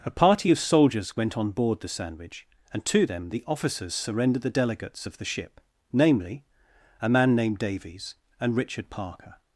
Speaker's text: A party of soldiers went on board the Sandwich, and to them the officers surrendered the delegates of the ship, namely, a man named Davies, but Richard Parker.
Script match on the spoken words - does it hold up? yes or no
no